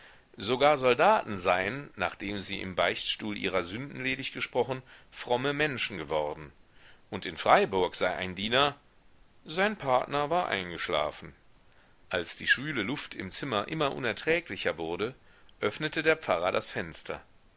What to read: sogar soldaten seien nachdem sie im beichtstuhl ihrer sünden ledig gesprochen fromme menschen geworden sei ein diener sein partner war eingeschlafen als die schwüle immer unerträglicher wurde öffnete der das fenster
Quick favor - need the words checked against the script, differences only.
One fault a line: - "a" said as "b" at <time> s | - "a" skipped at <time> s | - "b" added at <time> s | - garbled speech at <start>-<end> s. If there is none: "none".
- "und in freiburg" added at 7.1 s
- "luft im zimmer" added at 12.8 s
- "pfarrer" added at 16.2 s